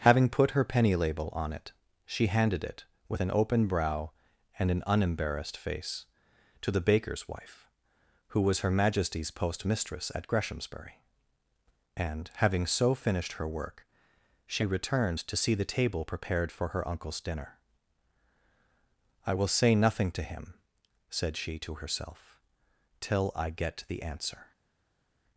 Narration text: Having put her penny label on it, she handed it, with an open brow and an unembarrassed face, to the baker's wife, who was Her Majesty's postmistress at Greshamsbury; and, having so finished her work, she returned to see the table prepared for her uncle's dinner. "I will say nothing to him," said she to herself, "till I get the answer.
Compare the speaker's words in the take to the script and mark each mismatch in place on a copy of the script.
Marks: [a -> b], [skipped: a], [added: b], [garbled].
Having put her penny label on it, she handed it, with an open brow and an unembarrassed face, to the baker's wife, who was Her Majesty's postmistress at Greshamsbury; and, having so finished her work, she returned to see the table prepared for her uncle's dinner. "I will say nothing to him," said she to herself, "till I get the answer.